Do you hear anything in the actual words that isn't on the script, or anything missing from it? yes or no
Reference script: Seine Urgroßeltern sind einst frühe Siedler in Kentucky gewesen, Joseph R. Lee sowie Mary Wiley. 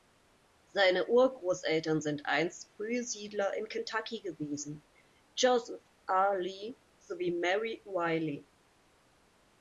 no